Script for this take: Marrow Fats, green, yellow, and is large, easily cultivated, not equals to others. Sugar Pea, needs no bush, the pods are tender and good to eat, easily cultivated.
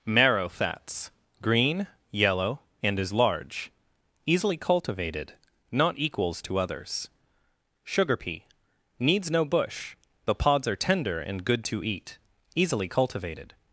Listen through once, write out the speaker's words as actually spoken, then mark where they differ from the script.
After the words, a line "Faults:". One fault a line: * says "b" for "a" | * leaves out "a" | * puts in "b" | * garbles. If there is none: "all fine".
Marrow Fats, green, yellow, and is large, easily cultivated, not equals to others. Sugar Pea, needs no bush, the pods are tender and good to eat, easily cultivated.
Faults:
all fine